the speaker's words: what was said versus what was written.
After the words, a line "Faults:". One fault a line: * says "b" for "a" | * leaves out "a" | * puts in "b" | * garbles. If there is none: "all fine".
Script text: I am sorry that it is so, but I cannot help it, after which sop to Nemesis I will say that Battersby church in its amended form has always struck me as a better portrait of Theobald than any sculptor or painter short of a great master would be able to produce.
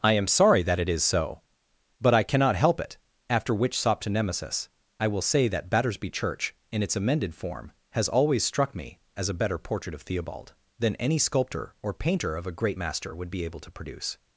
I am sorry that it is so, but I cannot help it, after which sop to Nemesis I will say that Battersby church in its amended form has always struck me as a better portrait of Theobald than any sculptor or painter of a great master would be able to produce.
Faults:
* leaves out "short"